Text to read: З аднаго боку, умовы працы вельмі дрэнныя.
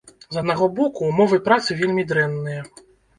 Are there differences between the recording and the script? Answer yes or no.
no